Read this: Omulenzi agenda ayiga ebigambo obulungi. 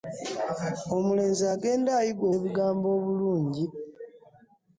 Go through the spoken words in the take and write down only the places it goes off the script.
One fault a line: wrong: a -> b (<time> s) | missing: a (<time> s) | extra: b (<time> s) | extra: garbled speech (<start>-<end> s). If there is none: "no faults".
no faults